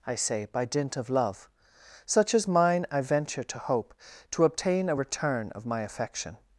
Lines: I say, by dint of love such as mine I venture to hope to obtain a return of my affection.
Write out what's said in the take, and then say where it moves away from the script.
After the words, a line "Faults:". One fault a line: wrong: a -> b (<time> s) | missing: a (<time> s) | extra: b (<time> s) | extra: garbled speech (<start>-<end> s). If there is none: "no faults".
I say, by dint of love such as mine I venture to hope to obtain a return of my affection.
Faults:
no faults